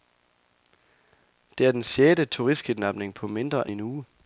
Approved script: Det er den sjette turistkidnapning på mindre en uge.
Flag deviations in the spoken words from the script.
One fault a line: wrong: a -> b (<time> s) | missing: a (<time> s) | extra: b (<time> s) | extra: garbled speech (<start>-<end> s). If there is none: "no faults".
no faults